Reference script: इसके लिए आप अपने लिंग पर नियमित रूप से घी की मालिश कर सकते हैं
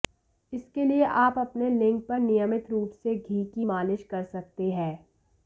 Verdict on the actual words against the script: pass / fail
pass